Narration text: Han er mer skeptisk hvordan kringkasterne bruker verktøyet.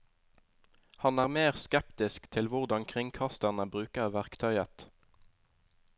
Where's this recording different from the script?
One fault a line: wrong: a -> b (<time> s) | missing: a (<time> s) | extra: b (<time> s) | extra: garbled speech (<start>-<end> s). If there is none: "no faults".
extra: til (2.3 s)